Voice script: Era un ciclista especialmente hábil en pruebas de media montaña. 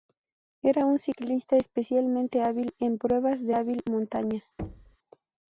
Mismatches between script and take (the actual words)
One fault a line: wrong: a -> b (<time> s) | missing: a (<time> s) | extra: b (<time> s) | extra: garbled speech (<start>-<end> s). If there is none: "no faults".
wrong: media -> hábil (3.5 s)